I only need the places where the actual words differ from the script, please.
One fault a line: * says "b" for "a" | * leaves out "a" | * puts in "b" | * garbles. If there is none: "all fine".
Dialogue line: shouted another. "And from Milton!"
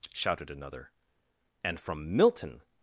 all fine